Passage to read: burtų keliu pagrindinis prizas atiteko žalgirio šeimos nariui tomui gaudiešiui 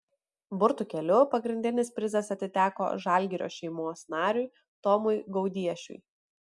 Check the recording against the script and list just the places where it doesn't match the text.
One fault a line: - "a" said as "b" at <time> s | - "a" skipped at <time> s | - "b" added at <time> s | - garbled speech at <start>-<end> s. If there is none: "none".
none